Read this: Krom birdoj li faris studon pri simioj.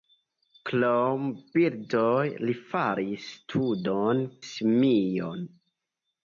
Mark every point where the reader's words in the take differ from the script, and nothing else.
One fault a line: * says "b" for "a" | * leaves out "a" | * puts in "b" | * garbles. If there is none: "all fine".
* leaves out "pri"